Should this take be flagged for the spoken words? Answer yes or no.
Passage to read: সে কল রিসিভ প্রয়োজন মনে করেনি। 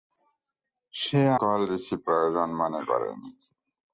no